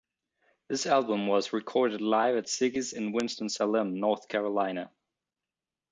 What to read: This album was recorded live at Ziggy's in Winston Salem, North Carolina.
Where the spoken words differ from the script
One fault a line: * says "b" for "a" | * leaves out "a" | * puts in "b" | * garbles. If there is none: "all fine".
all fine